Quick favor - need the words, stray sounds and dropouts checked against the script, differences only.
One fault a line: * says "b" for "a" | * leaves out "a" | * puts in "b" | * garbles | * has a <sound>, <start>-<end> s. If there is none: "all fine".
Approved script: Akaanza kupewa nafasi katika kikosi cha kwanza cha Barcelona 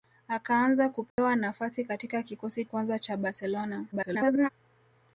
* has a dropout, 1.1-1.2 s
* leaves out "cha"
* garbles